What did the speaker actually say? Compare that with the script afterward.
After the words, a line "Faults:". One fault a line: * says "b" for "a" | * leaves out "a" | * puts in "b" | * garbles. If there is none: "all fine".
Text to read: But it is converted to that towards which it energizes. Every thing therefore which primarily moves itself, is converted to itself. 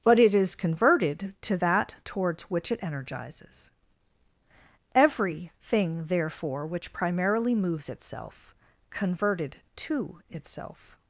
But it is converted to that towards which it energizes. Every thing therefore which primarily moves itself, converted to itself.
Faults:
* leaves out "is"